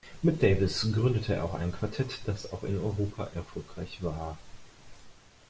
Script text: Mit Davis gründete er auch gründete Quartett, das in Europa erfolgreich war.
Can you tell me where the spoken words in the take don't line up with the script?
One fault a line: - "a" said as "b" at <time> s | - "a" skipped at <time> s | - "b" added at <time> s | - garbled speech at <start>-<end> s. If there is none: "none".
- "gründete" said as "ein" at 1.5 s
- "auch" added at 2.5 s